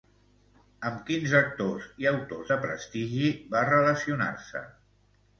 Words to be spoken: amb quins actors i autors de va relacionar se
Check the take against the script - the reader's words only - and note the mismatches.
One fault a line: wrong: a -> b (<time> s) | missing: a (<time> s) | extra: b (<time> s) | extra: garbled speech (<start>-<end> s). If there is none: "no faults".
extra: prestigi (2.7 s)